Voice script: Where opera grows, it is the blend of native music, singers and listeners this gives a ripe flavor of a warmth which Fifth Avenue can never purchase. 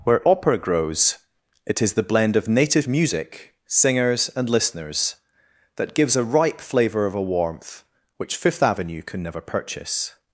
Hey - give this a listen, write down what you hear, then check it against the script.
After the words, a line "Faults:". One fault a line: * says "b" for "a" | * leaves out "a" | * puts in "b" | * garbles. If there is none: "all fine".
Where opera grows, it is the blend of native music, singers and listeners that gives a ripe flavor of a warmth which Fifth Avenue can never purchase.
Faults:
* says "that" for "this"